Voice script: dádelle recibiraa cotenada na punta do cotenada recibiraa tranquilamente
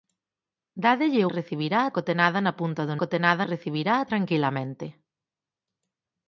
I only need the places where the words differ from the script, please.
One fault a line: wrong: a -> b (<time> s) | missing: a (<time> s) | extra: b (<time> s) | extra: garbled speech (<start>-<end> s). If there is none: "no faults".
no faults